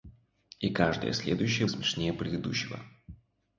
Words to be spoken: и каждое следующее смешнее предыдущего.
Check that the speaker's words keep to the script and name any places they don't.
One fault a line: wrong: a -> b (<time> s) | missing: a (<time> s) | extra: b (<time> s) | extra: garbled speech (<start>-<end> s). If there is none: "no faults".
no faults